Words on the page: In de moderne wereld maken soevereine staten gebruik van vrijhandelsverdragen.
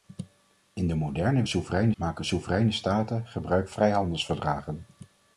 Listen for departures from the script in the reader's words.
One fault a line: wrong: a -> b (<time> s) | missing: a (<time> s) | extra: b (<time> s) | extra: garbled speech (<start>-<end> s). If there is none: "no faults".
wrong: wereld -> soevereine (1.5 s)
missing: van (3.7 s)